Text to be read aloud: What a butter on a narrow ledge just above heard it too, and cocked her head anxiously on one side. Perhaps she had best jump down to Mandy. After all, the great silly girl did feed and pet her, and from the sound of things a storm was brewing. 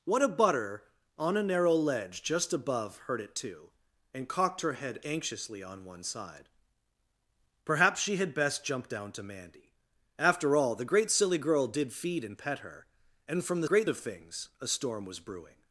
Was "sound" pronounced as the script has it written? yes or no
no